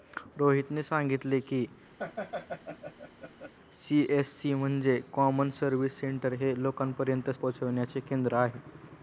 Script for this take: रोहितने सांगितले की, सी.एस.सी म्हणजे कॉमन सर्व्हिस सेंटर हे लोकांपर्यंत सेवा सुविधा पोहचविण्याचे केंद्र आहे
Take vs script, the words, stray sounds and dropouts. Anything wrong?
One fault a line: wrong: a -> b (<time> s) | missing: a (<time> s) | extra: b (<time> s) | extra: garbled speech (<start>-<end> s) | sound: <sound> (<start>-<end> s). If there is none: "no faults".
sound: laugh (2.0-3.5 s)
missing: सेवा सुविधा (7.3 s)